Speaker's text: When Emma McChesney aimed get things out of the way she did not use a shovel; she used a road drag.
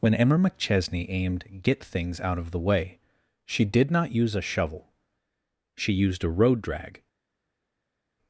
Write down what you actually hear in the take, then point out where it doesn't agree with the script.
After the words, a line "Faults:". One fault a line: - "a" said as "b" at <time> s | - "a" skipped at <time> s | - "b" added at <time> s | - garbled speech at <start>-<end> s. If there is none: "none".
When Emma McChesney aimed get things out of the way she did not use a shovel; she used a road drag.
Faults:
none